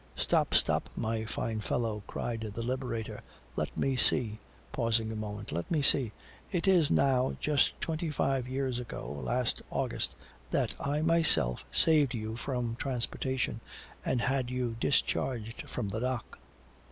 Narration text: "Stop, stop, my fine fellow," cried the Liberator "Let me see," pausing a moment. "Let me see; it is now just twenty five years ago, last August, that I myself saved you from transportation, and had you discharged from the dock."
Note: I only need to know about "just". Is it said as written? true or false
true